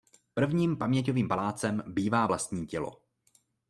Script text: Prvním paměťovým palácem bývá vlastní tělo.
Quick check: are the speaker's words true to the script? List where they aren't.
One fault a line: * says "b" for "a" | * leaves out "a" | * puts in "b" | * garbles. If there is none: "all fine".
all fine